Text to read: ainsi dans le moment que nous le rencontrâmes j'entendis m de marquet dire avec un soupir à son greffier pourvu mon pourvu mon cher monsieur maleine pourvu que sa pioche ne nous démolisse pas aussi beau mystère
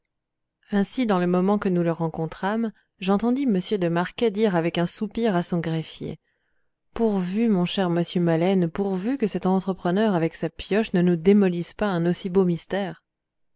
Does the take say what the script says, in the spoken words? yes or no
no